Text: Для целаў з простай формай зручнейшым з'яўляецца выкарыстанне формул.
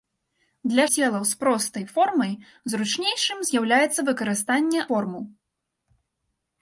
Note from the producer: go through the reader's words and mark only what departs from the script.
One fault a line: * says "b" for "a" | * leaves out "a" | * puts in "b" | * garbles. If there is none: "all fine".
all fine